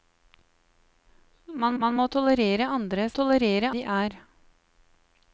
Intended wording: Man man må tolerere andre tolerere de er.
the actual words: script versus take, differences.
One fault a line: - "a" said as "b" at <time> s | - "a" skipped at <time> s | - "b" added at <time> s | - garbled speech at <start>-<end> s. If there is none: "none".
none